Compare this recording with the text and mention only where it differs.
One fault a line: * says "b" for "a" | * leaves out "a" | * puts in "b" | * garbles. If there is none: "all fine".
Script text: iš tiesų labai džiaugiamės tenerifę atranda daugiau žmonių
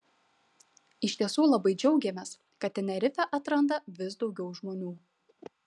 * puts in "kad"
* puts in "vis"